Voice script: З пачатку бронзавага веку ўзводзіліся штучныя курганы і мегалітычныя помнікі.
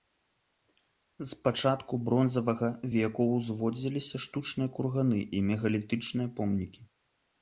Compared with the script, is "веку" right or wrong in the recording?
right